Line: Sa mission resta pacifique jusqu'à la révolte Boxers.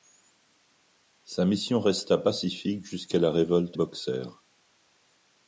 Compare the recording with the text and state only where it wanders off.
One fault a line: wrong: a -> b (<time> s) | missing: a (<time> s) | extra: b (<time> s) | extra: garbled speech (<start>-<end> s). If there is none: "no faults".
no faults